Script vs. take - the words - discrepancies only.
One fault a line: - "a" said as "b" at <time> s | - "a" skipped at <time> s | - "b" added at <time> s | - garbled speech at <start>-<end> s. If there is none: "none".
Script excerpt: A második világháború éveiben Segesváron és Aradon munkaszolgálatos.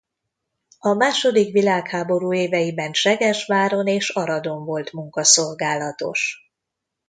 - "volt" added at 4.7 s